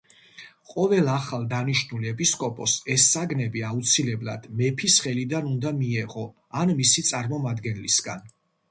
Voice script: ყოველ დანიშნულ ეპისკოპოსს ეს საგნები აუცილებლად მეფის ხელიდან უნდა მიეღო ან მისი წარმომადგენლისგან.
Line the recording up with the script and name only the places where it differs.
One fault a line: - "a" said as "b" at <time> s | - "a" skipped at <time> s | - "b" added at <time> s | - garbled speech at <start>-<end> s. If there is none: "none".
- "ახალ" added at 1.1 s